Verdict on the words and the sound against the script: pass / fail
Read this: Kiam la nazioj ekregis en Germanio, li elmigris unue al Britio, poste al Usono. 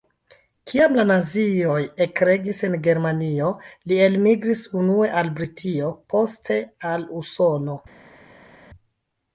pass